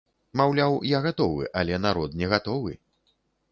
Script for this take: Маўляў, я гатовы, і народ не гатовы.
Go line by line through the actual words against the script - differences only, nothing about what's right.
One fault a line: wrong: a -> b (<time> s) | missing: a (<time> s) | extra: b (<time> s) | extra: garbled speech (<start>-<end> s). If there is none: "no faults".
wrong: і -> але (1.6 s)